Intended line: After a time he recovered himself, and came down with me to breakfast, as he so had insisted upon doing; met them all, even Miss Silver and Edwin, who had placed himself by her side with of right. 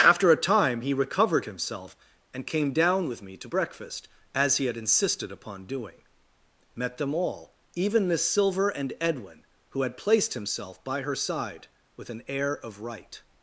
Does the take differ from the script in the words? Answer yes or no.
yes